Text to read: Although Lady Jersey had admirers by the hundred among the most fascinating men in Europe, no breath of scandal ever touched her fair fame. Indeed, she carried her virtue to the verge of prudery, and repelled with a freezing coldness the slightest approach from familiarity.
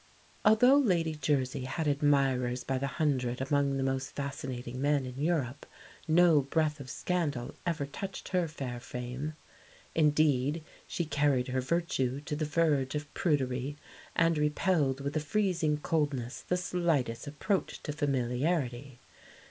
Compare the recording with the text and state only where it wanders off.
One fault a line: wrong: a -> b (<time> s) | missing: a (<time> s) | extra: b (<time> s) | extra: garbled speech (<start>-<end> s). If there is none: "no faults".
wrong: from -> to (17.8 s)